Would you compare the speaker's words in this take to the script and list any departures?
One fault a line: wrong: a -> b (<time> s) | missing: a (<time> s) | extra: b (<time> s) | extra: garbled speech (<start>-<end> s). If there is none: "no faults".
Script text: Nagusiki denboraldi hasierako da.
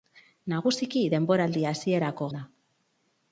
no faults